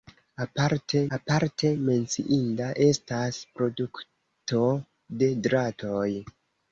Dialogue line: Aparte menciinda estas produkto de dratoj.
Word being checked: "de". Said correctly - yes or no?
yes